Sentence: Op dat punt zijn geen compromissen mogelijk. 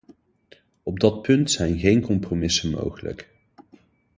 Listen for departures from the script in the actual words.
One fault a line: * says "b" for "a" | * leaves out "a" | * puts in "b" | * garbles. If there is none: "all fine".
all fine